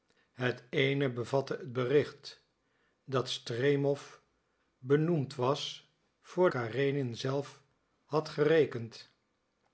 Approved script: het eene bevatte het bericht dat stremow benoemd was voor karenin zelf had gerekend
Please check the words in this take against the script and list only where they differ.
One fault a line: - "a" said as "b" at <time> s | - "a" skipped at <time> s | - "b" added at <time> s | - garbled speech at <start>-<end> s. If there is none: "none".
none